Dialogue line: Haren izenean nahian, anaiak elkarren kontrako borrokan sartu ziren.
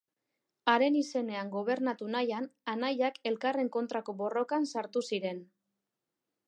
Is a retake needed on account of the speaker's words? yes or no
yes